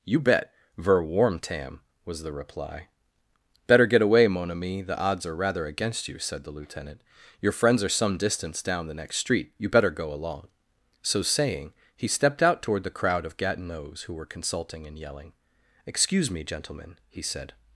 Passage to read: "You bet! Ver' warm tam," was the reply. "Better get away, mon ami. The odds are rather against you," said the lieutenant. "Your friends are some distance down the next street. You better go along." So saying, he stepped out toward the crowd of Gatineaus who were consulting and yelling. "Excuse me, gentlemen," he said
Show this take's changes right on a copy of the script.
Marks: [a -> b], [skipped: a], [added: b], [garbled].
"You bet! Ver' warm tam," was the reply. "Better get away, mon ami. The odds are rather against you," said the lieutenant. "Your friends are some distance down the next street. You better go along." So saying, he stepped out toward the crowd of Gatineaus who were consulting and yelling. "Excuse me, gentlemen," he said